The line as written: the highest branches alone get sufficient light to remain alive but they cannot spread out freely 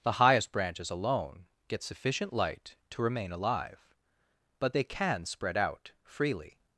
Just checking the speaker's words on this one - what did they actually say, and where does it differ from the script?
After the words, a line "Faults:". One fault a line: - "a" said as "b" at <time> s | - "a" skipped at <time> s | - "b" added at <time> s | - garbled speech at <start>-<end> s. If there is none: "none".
the highest branches alone get sufficient light to remain alive but they can spread out freely
Faults:
- "cannot" said as "can" at 4.8 s